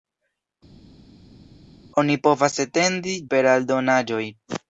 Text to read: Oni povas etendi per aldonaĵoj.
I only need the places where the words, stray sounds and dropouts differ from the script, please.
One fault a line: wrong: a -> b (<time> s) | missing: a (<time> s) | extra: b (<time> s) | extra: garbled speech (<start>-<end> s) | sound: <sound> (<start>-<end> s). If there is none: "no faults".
no faults